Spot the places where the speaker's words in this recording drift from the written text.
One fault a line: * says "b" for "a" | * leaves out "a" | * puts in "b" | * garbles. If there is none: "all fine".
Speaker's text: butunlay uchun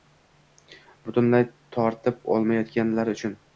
* puts in "tortib olmayotganlari"